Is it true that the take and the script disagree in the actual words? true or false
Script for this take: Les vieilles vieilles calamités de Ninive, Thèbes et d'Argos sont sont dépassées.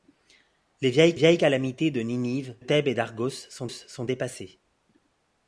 false